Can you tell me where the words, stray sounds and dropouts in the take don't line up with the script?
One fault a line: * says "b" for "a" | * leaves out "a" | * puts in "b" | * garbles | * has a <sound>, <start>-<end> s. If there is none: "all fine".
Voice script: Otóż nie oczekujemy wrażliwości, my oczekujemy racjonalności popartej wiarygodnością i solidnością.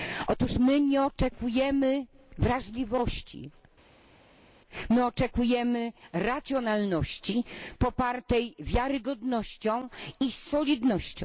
* puts in "my"